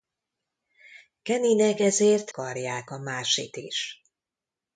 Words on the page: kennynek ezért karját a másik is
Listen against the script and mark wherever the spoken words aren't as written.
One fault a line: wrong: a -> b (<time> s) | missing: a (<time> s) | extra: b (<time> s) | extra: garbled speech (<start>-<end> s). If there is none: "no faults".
no faults